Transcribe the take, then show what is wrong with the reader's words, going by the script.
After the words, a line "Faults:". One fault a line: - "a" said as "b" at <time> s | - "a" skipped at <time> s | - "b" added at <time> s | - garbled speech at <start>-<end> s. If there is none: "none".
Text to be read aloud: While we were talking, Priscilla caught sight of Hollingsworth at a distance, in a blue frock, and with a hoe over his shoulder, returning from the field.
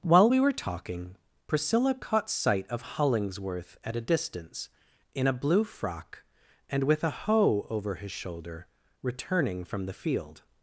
While we were talking, Priscilla caught sight of Hollingsworth at a distance, in a blue frock, and with a hoe over his shoulder, returning from the field.
Faults:
none